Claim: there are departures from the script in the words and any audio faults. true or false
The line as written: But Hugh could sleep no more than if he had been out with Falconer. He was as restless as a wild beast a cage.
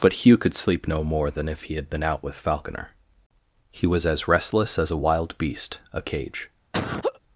true